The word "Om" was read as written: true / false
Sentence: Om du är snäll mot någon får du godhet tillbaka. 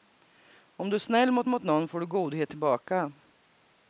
true